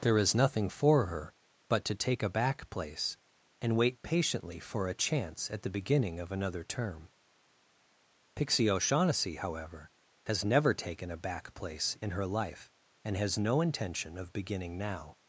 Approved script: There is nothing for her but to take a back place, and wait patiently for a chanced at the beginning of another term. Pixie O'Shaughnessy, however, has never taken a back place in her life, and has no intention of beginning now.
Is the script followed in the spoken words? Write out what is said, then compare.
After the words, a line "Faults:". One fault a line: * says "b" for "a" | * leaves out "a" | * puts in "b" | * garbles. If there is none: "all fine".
There is nothing for her but to take a back place, and wait patiently for a chance at the beginning of another term. Pixie O'Shaughnessy, however, has never taken a back place in her life, and has no intention of beginning now.
Faults:
* says "chance" for "chanced"